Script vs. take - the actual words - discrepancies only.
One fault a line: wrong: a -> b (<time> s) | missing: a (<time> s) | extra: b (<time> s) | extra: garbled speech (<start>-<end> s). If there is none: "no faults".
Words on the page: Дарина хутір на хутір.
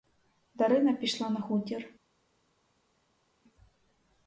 wrong: хутір -> пішла (0.9 s)